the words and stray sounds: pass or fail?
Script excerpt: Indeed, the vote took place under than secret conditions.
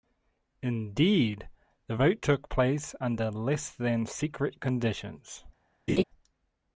fail